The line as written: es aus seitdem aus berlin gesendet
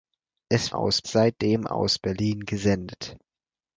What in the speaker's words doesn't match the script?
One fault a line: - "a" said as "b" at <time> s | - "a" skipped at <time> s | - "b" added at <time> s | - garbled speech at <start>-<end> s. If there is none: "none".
none